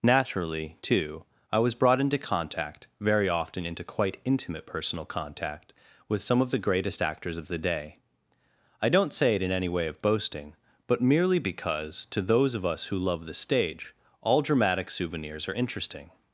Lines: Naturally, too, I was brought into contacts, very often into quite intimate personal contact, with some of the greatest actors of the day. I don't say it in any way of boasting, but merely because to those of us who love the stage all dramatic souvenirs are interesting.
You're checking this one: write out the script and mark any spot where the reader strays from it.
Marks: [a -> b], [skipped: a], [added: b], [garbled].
Naturally, too, I was brought into [contacts, -> contact] very often into quite intimate personal contact, with some of the greatest actors of the day. I don't say it in any way of boasting, but merely because to those of us who love the stage all dramatic souvenirs are interesting.